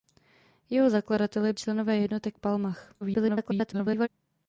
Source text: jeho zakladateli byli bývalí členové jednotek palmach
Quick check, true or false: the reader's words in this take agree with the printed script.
false